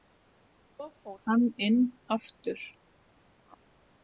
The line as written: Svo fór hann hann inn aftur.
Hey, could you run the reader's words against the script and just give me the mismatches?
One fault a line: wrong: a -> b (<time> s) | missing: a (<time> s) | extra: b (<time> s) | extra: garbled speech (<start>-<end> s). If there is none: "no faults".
missing: hann (1.4 s)